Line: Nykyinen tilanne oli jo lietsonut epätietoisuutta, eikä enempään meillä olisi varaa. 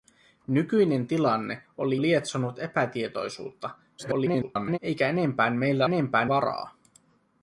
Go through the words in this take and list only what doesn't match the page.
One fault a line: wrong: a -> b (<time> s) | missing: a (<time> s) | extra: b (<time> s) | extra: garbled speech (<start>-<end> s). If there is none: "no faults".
missing: jo (2.0 s)
extra: garbled speech (4.0-4.8 s)
wrong: olisi -> enempään (5.8 s)